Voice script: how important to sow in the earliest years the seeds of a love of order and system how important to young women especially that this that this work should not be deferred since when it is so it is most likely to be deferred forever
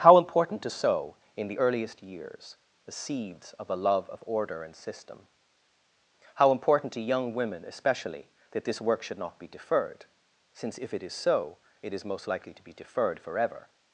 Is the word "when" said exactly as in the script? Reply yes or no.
no